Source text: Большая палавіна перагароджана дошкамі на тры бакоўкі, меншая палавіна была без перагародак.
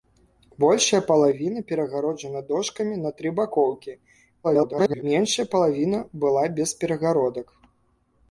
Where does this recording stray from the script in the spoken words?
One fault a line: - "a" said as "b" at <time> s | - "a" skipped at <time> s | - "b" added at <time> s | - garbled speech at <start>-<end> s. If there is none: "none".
- garbled speech at 4.4-5.0 s